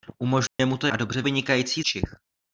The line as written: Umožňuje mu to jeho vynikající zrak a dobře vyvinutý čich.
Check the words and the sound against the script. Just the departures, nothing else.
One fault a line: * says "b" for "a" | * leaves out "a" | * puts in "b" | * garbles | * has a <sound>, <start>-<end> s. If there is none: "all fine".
* has a dropout, 0.5-0.6 s
* leaves out "jeho vynikající zrak"
* says "vynikající" for "vyvinutý"